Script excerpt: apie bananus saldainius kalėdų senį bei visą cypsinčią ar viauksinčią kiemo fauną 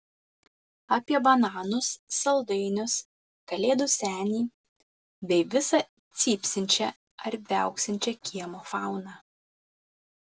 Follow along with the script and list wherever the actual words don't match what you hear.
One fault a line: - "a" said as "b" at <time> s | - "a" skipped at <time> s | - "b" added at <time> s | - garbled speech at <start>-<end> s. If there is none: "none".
none